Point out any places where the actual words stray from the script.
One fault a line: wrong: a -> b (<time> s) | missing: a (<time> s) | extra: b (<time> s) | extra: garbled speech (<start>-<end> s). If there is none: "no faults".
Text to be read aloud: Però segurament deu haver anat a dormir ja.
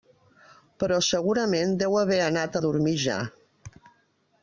no faults